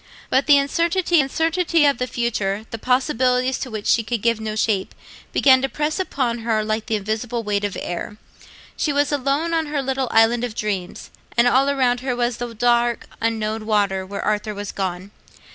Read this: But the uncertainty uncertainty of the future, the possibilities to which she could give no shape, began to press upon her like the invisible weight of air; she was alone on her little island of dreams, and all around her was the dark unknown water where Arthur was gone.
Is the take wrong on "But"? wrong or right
right